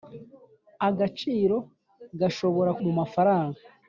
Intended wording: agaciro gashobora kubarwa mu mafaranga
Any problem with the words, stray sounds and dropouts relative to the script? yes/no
yes